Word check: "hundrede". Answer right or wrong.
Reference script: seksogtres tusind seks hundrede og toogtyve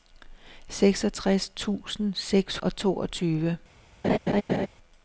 wrong